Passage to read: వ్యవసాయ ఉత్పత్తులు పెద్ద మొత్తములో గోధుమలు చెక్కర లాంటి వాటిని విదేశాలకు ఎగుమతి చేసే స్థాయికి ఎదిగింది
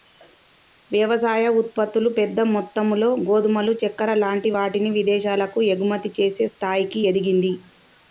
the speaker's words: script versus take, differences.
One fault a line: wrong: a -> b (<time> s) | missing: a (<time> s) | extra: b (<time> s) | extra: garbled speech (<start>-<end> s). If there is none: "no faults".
no faults